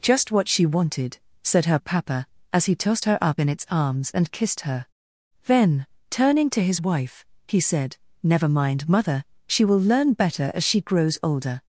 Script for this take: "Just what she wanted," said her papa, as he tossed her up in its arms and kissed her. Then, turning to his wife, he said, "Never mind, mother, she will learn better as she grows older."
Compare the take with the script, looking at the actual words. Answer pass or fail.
pass